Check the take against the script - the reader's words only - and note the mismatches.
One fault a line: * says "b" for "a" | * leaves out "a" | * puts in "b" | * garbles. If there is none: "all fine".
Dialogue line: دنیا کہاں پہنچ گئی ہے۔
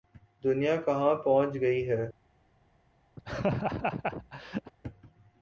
all fine